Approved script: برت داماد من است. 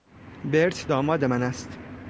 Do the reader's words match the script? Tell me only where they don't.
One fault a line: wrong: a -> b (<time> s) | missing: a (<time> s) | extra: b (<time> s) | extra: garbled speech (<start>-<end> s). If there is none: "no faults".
no faults